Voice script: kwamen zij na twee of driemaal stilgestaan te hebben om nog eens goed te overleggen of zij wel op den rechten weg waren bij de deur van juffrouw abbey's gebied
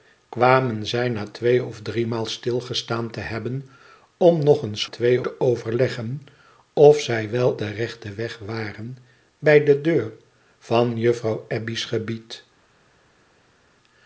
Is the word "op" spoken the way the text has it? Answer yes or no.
no